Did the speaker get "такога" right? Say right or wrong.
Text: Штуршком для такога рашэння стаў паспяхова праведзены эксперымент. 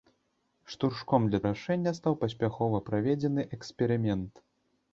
wrong